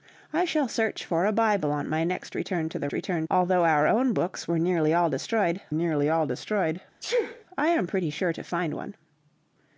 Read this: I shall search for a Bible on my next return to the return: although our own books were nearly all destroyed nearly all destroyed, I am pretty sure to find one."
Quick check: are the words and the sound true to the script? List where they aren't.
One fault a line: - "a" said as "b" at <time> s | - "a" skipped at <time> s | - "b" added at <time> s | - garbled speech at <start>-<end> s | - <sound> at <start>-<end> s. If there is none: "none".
- sneeze at 7.0-7.4 s